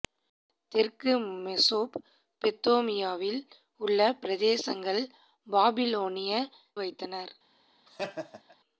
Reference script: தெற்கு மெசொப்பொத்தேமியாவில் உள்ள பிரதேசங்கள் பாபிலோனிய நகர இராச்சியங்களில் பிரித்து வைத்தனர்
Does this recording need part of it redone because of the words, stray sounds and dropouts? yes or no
yes